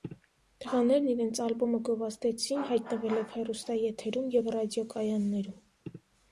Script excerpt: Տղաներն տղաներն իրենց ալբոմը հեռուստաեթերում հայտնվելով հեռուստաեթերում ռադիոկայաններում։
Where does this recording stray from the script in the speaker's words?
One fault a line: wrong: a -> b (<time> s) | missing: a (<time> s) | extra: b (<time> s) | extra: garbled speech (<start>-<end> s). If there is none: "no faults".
missing: տղաներն (1.1 s)
wrong: հեռուստաեթերում -> գովազդեցին (1.9 s)
extra: և (4.4 s)